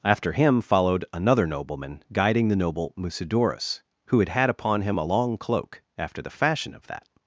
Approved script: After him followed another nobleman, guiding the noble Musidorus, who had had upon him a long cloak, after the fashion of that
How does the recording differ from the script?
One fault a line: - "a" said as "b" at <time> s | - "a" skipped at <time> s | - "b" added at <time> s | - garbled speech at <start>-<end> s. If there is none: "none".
none